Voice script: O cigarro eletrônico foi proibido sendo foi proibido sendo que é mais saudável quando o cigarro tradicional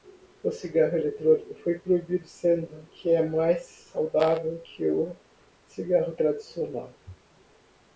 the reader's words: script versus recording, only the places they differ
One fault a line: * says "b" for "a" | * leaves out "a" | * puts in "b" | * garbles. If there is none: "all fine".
* leaves out "foi proibido sendo"
* says "que" for "quando"